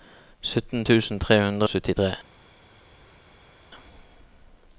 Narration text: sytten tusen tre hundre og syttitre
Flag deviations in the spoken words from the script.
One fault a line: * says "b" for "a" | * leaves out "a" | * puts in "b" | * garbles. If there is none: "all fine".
* leaves out "og"